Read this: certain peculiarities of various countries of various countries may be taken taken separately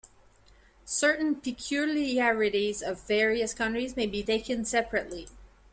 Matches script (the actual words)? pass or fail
fail